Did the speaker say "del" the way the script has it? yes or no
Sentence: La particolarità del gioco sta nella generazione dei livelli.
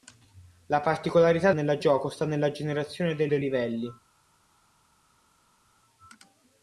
no